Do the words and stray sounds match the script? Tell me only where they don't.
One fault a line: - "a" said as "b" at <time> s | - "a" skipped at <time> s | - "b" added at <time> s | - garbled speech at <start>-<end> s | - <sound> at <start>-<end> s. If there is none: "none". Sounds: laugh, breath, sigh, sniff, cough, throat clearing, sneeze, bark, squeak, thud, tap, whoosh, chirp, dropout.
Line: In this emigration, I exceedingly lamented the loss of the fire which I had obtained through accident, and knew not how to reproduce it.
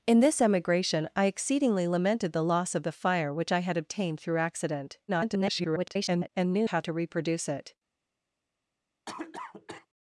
- garbled speech at 5.1-6.3 s
- "not" skipped at 6.7 s
- cough at 9.1-9.9 s